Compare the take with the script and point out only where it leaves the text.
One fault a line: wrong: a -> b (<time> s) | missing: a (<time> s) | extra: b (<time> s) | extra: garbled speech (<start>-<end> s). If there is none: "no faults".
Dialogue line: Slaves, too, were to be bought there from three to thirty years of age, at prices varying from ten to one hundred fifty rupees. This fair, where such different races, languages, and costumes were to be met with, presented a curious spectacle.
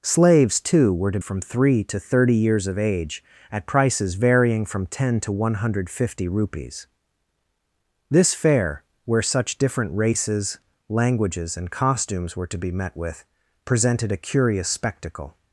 missing: be bought there (1.2 s)